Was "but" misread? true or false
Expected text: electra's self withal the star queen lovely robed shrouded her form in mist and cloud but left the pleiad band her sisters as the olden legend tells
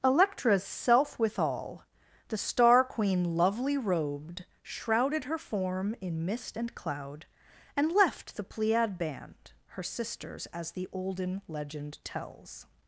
true